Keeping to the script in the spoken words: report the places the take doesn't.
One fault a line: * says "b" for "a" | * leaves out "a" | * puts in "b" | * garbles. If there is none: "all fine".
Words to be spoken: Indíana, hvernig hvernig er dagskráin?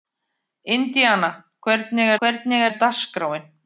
all fine